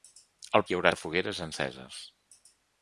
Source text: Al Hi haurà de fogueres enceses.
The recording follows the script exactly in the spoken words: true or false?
true